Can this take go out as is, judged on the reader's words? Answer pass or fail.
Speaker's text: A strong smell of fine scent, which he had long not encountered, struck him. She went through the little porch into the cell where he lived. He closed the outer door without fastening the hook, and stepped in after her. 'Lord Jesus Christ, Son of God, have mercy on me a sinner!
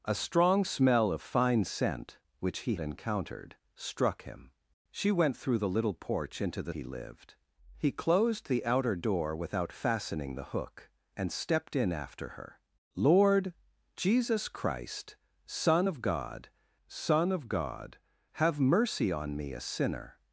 fail